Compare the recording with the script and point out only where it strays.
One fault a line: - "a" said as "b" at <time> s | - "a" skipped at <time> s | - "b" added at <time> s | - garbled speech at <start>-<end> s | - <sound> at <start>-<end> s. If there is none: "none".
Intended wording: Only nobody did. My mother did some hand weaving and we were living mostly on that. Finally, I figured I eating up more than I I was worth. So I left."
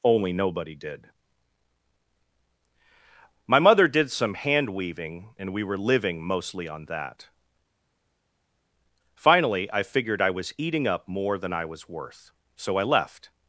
- "was" added at 10.3 s
- "I" skipped at 11.6 s